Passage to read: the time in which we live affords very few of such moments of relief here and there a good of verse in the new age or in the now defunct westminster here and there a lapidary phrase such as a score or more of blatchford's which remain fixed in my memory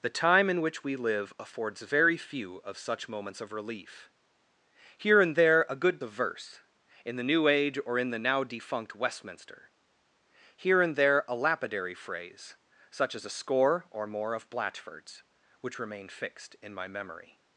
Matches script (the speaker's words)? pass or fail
pass